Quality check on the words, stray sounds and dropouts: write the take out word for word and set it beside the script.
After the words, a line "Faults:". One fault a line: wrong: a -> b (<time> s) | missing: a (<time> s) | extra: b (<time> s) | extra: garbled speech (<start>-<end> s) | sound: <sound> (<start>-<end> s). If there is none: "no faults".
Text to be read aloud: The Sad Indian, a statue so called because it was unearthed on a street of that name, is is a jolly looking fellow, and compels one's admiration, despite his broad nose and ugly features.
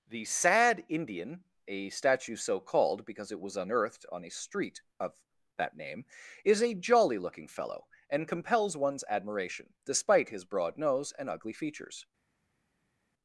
The Sad Indian, a statue so called because it was unearthed on a street of that name, is a jolly looking fellow, and compels one's admiration, despite his broad nose and ugly features.
Faults:
missing: is (6.6 s)